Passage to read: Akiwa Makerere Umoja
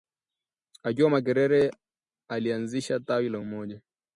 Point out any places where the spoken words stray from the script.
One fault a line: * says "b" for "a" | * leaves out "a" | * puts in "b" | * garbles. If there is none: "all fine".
* puts in "alianzisha tawi la"